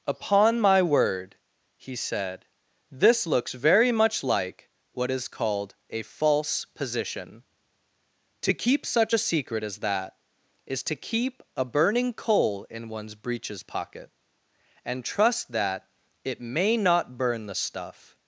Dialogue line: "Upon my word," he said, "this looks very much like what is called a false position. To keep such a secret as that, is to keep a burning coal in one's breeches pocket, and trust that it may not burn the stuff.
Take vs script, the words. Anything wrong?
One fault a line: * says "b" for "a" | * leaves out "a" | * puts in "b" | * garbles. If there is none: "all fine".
all fine